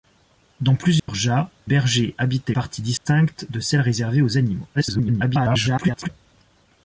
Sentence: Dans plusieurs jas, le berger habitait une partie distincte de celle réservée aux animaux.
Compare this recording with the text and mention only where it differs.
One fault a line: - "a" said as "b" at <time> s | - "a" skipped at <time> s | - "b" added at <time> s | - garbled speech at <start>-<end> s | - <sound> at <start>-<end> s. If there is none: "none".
- dropout at 1.0-1.1 s
- "le" skipped at 1.5 s
- "une" skipped at 2.5 s
- dropout at 3.0-3.1 s
- garbled speech at 4.7-6.1 s